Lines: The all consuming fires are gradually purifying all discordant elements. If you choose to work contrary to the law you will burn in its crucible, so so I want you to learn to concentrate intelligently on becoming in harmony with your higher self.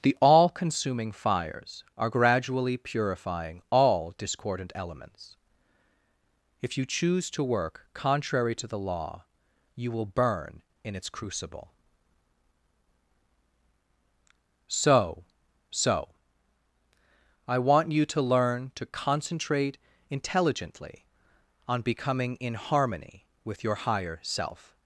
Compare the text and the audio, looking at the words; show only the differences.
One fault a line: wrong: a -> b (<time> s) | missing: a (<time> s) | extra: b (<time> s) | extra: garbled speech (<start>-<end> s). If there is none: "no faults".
no faults